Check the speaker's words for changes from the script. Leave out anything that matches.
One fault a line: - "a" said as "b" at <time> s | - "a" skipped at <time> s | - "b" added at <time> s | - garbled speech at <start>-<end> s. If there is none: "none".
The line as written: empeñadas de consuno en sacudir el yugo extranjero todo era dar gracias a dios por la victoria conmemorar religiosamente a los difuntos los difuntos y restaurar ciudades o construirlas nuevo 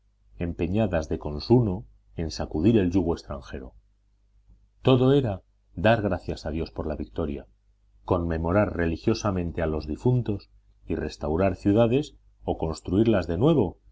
- "los difuntos" skipped at 10.5 s
- "de" added at 13.3 s